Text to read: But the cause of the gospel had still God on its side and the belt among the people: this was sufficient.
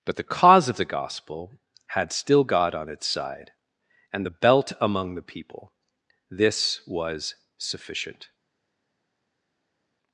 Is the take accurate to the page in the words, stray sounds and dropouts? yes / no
yes